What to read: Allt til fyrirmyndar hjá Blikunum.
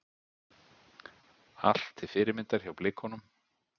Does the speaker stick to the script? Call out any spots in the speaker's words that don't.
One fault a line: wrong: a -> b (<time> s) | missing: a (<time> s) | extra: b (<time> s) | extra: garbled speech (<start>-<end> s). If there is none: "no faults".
no faults